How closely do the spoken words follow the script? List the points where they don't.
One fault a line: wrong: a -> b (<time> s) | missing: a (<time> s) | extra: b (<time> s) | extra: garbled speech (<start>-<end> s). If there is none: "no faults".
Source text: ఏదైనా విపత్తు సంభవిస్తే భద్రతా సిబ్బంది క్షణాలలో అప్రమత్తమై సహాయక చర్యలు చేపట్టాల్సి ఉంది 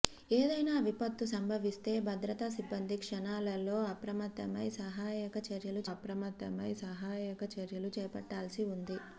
extra: అప్రమత్తమై సహాయక చర్యలు (5.9 s)